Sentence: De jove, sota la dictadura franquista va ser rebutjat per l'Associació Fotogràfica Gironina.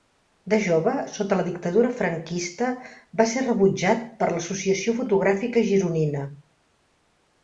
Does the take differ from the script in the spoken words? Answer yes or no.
no